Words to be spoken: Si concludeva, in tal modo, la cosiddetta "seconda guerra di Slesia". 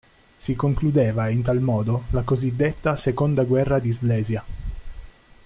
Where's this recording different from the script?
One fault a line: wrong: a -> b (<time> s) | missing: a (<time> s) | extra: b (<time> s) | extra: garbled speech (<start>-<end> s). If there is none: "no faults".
no faults